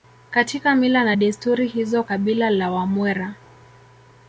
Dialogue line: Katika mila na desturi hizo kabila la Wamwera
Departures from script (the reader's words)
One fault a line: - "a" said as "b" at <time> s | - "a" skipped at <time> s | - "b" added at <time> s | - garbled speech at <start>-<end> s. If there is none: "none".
none